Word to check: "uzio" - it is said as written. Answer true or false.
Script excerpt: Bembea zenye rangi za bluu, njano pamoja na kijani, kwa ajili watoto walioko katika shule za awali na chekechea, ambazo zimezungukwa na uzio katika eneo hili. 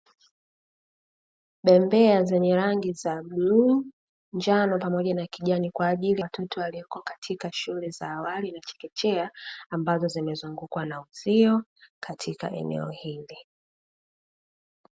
true